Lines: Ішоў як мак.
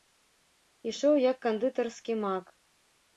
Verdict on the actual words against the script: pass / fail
fail